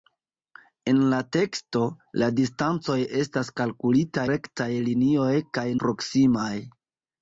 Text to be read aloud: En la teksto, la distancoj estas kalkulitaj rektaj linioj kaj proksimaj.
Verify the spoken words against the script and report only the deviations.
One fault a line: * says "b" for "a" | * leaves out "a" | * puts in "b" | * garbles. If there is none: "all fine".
all fine